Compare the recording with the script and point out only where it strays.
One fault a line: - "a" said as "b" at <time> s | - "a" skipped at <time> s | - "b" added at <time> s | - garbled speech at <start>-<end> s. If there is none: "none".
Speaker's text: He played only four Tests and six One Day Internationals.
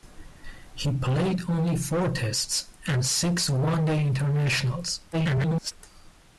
- garbled speech at 5.1-5.7 s